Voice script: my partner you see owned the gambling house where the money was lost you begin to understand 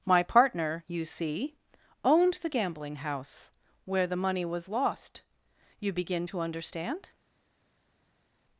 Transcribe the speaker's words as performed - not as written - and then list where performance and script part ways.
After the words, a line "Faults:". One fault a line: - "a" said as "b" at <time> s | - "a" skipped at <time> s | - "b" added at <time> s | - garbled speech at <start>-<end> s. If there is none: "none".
my partner you see owned the gambling house where the money was lost you begin to understand
Faults:
none